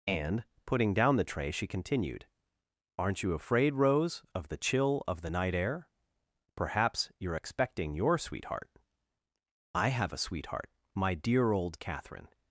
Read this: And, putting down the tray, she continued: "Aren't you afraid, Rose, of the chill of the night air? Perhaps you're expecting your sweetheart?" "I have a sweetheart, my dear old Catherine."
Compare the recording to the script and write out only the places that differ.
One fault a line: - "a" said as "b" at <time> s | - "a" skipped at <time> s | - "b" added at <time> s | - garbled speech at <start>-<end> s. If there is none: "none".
none